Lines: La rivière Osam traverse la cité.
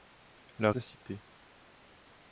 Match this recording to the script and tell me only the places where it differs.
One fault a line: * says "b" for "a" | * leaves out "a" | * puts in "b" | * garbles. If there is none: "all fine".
* leaves out "rivière Osam traverse"